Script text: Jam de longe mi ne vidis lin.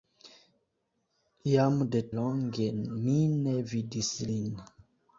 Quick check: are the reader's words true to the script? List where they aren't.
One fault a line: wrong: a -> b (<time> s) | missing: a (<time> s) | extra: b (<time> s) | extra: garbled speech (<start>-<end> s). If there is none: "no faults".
no faults